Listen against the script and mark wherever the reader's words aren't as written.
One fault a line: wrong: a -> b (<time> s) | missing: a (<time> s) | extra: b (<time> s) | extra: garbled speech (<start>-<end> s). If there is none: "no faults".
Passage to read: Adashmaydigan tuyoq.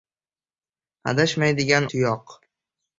no faults